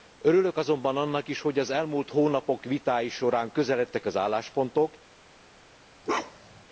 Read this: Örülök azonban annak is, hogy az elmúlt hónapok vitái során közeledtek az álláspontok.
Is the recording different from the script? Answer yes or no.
no